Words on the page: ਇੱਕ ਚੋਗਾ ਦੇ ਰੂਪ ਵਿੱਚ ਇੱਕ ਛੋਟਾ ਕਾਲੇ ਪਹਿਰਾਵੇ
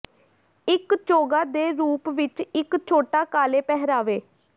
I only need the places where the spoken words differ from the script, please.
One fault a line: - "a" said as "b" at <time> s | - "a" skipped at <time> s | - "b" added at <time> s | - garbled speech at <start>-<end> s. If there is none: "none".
none